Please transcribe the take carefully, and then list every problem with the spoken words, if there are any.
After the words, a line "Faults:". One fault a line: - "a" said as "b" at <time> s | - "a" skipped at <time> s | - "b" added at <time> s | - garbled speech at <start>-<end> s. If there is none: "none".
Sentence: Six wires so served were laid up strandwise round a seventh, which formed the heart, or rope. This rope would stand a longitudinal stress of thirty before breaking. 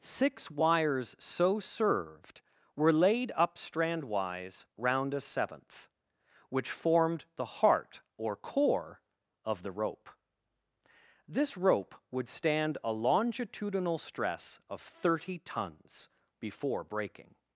Six wires so served were laid up strandwise round a seventh, which formed the heart, or core, of the rope. This rope would stand a longitudinal stress of thirty tons before breaking.
Faults:
- "core of the" added at 8.3 s
- "tons" added at 15.4 s